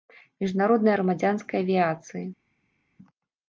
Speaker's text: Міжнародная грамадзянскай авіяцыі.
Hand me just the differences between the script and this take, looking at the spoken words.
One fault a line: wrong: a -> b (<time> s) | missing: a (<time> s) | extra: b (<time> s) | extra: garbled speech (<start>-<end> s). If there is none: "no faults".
no faults